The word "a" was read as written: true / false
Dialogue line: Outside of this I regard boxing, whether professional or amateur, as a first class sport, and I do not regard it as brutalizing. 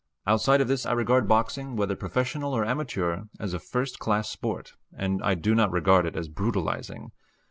true